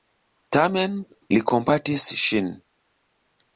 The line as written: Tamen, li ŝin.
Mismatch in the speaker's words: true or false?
true